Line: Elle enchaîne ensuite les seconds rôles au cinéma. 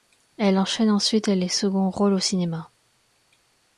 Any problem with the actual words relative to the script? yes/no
no